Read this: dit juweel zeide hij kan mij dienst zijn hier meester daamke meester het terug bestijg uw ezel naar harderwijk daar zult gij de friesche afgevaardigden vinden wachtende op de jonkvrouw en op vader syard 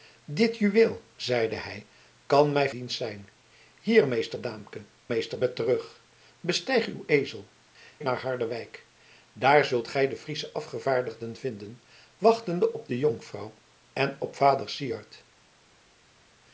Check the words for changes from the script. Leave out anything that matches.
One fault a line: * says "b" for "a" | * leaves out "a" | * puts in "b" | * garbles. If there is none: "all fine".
all fine